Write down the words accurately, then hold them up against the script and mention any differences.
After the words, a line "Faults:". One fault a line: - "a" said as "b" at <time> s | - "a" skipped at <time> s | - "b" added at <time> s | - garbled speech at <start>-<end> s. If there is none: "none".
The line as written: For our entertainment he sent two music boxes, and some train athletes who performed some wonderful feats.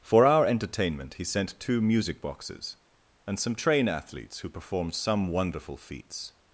For our entertainment he sent two music boxes, and some train athletes who performed some wonderful feats.
Faults:
none